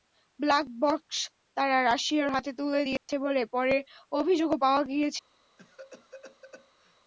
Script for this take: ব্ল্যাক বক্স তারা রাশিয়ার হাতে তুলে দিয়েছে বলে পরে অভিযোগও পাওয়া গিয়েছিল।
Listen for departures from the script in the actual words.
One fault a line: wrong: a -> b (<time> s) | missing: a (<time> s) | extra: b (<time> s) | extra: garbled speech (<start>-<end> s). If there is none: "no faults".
no faults